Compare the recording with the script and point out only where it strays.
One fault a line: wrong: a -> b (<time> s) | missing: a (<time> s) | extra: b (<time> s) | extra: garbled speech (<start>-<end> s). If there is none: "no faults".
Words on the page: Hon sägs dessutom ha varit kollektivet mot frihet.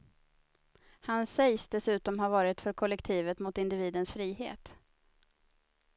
wrong: Hon -> Han (1.0 s)
extra: för (2.6 s)
extra: individens (3.6 s)